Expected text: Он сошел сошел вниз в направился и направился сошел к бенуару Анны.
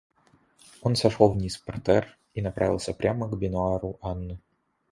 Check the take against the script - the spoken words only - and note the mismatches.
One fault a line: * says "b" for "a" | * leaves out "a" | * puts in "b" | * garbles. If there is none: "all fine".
* leaves out "сошел"
* says "партер" for "направился"
* says "прямо" for "сошел"